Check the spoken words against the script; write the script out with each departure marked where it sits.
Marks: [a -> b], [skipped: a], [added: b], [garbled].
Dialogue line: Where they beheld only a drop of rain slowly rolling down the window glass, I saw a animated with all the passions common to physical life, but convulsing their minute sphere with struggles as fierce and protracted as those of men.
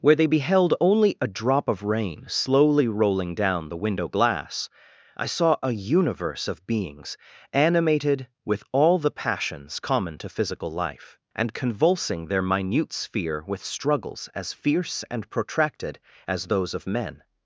Where they beheld only a drop of rain slowly rolling down the window glass, I saw a [added: universe of beings] animated with all the passions common to physical life, [but -> and] convulsing their minute sphere with struggles as fierce and protracted as those of men.